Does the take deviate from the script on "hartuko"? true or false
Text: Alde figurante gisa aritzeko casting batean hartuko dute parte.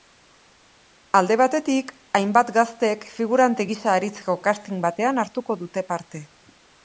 false